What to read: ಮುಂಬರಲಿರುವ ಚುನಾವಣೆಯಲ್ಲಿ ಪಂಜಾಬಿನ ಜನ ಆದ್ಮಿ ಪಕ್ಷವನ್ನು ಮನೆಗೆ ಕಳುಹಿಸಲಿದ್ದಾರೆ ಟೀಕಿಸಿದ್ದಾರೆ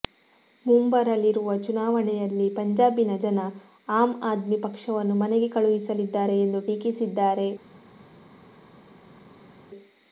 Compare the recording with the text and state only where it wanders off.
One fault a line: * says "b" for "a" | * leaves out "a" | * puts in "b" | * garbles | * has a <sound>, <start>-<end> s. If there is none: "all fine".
* puts in "ಆಮ್"
* puts in "ಎಂದು"